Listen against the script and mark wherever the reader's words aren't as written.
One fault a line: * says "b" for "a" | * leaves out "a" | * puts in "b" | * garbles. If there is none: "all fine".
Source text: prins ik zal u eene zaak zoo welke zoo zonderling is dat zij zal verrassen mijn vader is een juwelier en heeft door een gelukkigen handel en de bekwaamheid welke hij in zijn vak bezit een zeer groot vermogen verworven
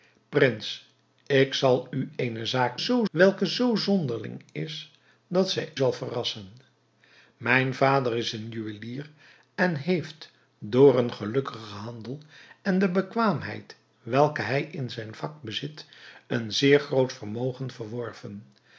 all fine